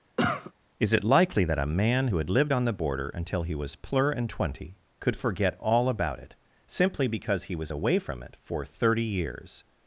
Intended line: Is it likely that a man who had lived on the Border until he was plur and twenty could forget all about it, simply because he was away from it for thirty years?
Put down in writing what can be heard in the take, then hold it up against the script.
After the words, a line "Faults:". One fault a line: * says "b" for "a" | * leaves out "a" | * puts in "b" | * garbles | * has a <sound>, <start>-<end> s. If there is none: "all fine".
Is it likely that a man who had lived on the Border until he was plur and twenty could forget all about it, simply because he was away from it for thirty years?
Faults:
* has a cough, 0.2-0.5 s